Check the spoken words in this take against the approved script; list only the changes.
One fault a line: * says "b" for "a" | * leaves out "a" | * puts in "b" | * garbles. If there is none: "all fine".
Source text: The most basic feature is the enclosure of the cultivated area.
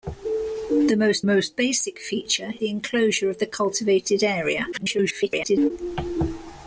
* puts in "most"
* leaves out "is"
* garbles